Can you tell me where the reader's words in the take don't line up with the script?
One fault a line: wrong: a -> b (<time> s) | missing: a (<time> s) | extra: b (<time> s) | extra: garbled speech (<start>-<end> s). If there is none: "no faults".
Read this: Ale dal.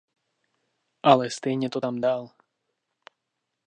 extra: stejně to tam (1.3 s)